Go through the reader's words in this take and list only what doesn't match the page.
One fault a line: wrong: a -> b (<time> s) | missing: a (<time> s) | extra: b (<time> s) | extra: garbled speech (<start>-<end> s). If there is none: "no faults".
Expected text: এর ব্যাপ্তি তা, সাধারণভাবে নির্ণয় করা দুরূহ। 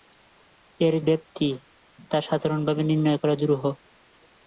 no faults